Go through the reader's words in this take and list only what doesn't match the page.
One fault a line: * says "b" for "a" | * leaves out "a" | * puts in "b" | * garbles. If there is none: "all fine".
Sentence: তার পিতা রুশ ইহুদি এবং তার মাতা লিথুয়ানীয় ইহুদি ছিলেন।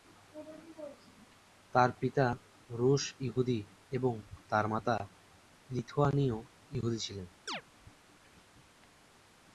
all fine